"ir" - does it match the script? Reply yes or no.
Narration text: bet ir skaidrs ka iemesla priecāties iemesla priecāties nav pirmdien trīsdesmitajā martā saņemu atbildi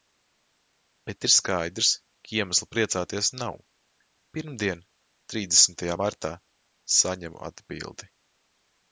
yes